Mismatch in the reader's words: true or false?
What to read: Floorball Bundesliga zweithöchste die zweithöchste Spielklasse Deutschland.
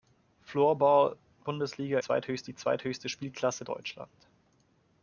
false